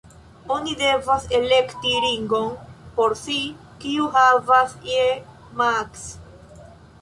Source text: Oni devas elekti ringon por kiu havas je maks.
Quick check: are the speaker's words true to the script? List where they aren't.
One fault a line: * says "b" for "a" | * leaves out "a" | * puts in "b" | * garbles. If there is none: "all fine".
* puts in "si"